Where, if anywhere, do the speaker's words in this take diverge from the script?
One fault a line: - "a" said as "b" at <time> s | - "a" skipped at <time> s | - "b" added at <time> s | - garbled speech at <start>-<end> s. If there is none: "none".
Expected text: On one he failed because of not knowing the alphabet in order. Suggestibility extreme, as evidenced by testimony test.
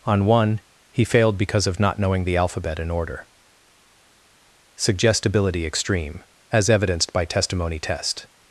none